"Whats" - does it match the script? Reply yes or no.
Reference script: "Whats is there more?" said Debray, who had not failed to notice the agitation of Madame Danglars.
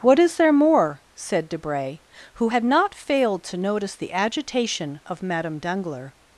no